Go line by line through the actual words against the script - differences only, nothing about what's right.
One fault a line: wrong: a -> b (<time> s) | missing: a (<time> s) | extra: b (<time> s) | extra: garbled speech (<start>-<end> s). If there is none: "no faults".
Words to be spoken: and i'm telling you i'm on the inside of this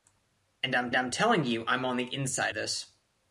extra: i'm (0.9 s)
missing: of (2.5 s)